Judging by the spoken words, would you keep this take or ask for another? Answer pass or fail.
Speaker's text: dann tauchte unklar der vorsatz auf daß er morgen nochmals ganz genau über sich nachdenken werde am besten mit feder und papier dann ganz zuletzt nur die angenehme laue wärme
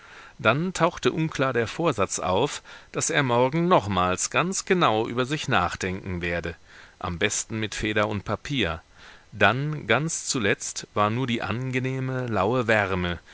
fail